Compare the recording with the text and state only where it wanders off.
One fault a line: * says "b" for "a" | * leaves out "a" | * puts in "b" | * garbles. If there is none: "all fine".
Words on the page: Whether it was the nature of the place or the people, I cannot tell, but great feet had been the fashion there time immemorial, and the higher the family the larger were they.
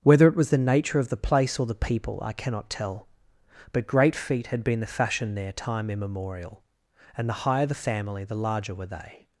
all fine